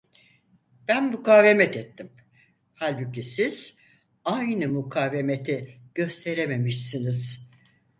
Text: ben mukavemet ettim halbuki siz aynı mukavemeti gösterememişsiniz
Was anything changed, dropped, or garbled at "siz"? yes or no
no